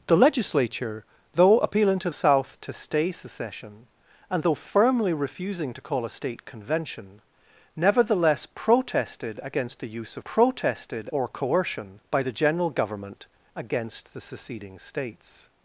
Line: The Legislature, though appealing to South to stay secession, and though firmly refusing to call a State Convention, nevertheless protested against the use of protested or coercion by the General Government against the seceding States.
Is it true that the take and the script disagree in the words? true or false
false